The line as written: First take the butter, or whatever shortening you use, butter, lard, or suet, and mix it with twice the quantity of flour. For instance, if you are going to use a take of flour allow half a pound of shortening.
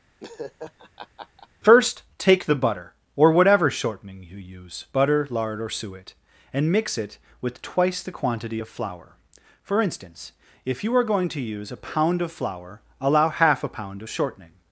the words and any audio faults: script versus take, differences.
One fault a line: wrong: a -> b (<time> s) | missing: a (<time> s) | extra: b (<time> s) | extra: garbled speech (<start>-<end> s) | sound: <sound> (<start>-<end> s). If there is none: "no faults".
sound: laugh (0.2-1.5 s)
wrong: take -> pound (11.8 s)